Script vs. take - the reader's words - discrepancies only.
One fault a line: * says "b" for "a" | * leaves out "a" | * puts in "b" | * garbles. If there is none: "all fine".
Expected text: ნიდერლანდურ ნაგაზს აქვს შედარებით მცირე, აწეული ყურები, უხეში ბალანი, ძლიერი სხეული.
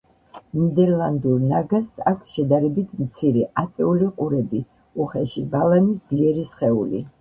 all fine